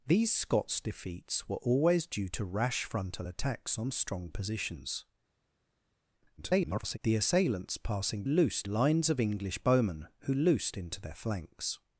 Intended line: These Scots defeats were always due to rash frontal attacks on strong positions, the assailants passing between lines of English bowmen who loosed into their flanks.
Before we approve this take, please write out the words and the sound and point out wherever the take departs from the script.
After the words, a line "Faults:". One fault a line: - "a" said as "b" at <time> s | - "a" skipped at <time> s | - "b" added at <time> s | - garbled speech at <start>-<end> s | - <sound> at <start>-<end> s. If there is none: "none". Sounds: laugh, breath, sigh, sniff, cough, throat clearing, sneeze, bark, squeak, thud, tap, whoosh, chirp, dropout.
These Scots defeats were always due to rash frontal attacks on strong positions, [garbled] the assailants passing loosed lines of English bowmen who loosed into their flanks.
Faults:
- garbled speech at 6.4-7.0 s
- "between" said as "loosed" at 8.3 s